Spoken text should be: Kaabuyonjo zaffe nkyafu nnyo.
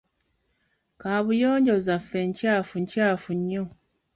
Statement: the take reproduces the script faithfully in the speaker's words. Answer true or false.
false